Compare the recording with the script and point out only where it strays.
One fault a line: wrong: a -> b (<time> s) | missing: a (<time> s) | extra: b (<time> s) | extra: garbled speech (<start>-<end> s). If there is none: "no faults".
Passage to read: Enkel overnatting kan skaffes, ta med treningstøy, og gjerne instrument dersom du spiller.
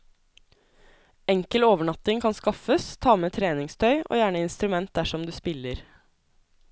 no faults